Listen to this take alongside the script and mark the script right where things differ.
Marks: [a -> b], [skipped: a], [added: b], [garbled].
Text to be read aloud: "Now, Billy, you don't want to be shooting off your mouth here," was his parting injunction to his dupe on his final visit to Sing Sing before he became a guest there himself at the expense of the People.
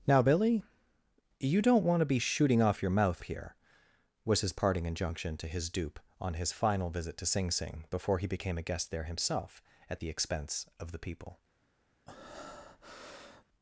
"Now, Billy, you don't want to be shooting off your mouth here," was his parting injunction to his dupe on his final visit to Sing Sing before he became a guest there himself at the expense of the People.